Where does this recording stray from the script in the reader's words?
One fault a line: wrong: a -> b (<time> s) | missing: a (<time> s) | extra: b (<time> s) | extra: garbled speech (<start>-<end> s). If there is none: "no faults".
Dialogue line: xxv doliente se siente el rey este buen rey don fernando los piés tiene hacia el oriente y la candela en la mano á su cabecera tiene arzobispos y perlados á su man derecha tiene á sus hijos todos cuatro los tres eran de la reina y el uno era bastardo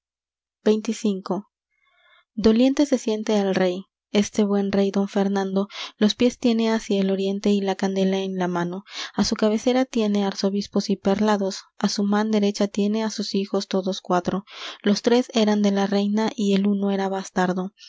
no faults